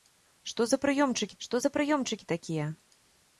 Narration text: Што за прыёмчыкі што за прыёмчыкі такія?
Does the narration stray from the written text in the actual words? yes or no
no